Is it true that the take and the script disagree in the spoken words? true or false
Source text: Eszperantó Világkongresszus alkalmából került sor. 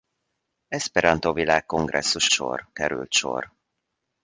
true